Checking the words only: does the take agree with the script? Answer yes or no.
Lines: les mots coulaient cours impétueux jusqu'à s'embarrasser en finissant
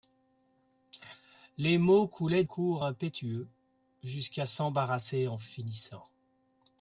yes